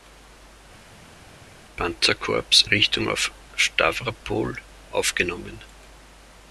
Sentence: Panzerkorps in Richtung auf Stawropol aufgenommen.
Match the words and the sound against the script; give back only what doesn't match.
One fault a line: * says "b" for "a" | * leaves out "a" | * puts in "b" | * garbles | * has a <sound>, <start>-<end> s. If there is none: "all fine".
* leaves out "in"